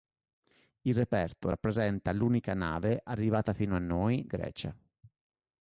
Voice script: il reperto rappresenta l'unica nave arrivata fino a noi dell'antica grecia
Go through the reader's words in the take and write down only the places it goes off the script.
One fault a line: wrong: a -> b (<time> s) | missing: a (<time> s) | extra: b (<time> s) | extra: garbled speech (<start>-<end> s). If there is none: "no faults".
missing: dell'antica (4.3 s)